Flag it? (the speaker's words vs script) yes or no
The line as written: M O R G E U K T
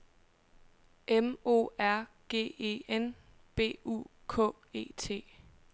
yes